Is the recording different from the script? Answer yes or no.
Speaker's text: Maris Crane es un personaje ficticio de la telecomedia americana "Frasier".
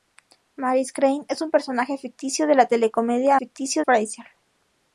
yes